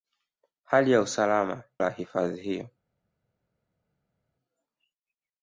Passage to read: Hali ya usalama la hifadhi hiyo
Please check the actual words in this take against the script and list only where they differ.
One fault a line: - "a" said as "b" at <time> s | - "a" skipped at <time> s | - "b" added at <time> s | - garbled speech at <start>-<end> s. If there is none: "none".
none